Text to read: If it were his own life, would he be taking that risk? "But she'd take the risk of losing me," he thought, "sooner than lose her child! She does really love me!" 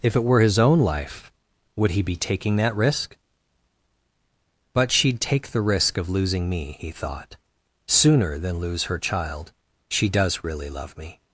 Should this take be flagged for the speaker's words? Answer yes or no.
no